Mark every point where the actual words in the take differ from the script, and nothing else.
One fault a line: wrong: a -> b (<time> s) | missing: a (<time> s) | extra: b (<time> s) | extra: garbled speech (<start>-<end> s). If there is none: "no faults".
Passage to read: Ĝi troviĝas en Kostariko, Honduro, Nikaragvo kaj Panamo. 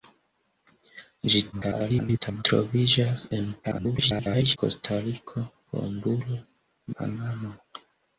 extra: garbled speech (1.5-2.4 s)
extra: garbled speech (3.6-4.6 s)
missing: Nikaragvo kaj (6.4 s)